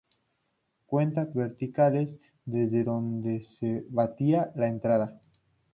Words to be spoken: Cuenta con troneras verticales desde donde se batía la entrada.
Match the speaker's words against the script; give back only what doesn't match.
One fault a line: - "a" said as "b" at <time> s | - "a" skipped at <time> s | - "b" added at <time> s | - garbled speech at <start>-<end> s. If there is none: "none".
- "con troneras" skipped at 1.3 s